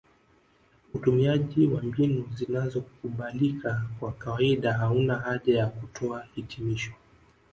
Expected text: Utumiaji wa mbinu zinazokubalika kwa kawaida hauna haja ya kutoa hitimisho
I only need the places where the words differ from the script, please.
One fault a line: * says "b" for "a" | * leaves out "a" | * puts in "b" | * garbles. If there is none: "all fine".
all fine